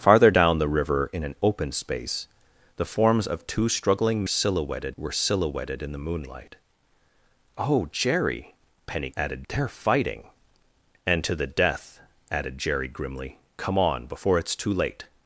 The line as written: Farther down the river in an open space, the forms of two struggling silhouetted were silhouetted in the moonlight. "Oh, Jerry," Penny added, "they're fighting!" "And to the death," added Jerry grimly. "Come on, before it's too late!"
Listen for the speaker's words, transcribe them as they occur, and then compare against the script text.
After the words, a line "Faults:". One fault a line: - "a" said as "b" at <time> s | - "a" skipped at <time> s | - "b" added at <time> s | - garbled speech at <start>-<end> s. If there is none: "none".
Farther down the river in an open space, the forms of two struggling silhouetted were silhouetted in the moonlight. "Oh, Jerry," Penny added, "they're fighting!" "And to the death," added Jerry grimly. "Come on, before it's too late!"
Faults:
none